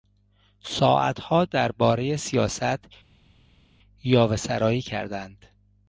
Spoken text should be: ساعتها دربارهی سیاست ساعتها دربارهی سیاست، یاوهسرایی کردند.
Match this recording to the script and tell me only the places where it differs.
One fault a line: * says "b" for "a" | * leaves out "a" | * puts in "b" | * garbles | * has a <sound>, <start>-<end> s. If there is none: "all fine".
* leaves out "ساعتها دربارهی سیاست"